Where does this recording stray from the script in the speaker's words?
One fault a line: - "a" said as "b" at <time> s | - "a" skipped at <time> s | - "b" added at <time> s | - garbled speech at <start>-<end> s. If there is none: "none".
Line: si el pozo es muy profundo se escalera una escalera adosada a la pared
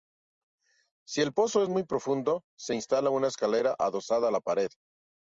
- "escalera" said as "instala" at 2.7 s